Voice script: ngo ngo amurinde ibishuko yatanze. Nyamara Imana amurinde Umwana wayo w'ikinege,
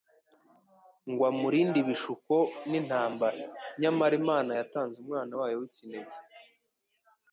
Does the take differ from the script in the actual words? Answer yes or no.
yes